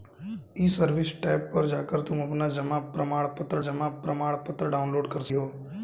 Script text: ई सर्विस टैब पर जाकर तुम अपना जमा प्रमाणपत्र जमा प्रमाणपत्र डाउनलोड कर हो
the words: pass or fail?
pass